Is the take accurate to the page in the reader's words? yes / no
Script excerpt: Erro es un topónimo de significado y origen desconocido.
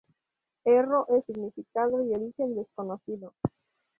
no